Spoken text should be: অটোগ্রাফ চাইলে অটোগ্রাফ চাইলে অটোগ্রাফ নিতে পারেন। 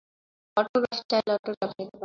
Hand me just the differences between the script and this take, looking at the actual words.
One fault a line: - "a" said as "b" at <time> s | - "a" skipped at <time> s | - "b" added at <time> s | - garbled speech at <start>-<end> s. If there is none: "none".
- "চাইলে অটোগ্রাফ" skipped at 1.7 s